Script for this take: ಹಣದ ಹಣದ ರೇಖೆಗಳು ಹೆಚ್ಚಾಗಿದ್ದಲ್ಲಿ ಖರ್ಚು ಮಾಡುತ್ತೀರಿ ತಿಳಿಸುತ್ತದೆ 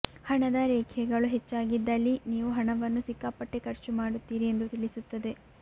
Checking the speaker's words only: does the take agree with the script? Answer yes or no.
no